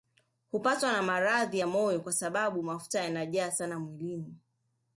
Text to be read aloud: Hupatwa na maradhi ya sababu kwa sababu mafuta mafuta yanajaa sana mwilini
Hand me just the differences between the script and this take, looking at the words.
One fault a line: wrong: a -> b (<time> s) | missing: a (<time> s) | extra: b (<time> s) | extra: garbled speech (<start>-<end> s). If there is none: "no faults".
wrong: sababu -> moyo (1.7 s)
missing: mafuta (3.0 s)